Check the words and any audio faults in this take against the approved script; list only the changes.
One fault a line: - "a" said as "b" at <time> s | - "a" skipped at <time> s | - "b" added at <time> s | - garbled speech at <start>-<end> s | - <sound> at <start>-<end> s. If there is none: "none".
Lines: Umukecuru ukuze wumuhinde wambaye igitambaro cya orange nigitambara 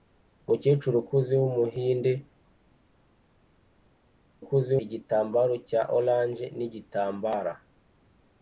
- "wambaye" said as "ukuze" at 4.4 s